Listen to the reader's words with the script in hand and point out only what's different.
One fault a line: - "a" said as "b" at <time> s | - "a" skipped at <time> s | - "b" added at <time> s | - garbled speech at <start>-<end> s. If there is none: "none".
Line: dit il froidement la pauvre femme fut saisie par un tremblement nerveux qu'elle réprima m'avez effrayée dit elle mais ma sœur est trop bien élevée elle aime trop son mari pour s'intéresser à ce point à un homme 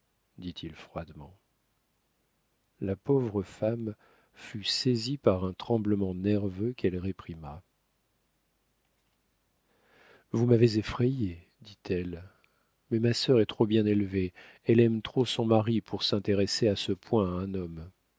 - "vous" added at 10.3 s